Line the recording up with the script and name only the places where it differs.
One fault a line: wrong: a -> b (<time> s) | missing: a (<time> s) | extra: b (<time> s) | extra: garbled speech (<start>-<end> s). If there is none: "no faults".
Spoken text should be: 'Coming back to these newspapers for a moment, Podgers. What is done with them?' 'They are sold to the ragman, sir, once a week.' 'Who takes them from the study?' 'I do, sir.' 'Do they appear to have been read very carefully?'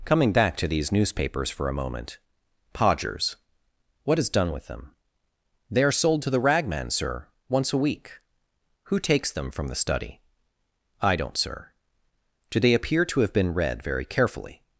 wrong: do -> don't (11.2 s)